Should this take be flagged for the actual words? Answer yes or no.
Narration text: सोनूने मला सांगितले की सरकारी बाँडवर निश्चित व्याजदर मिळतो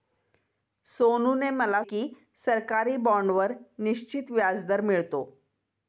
yes